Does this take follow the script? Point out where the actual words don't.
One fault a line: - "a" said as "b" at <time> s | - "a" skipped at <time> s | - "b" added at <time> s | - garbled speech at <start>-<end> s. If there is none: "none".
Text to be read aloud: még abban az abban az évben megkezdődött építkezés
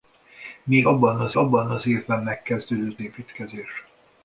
none